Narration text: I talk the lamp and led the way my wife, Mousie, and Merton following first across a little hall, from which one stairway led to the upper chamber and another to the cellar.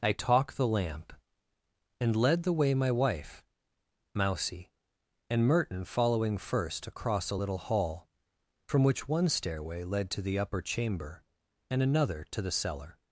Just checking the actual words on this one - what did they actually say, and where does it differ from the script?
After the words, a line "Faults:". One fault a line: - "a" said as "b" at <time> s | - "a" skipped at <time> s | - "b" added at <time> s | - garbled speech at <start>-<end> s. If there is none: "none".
I talk the lamp and led the way my wife, Mousie, and Merton following first across a little hall, from which one stairway led to the upper chamber and another to the cellar.
Faults:
none